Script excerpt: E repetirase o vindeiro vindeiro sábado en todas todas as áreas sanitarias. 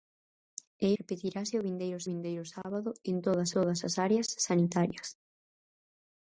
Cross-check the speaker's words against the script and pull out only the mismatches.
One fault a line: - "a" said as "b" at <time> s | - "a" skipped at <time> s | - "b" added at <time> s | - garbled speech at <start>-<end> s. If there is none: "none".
none